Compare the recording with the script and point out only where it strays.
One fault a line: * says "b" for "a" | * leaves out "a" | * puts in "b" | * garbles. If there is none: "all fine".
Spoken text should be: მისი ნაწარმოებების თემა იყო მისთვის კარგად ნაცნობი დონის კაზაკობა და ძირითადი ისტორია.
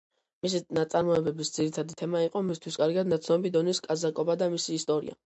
* puts in "ძირითადი"
* says "მისი" for "ძირითადი"